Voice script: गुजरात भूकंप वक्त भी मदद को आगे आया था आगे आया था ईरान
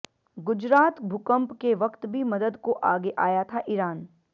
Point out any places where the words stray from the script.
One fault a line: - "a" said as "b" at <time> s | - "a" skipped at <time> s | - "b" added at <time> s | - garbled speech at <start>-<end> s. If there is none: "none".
- "के" added at 1.6 s
- "आगे आया था" skipped at 3.6 s